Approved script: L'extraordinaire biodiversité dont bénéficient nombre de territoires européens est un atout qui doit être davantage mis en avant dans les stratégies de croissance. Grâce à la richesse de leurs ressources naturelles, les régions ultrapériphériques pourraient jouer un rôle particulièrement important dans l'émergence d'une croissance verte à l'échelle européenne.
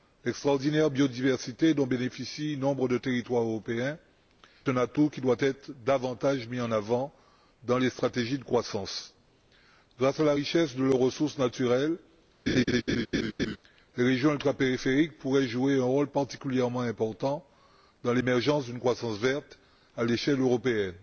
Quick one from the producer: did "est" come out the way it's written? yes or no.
no